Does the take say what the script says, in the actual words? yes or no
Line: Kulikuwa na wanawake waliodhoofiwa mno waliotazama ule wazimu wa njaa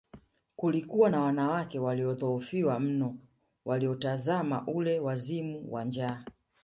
yes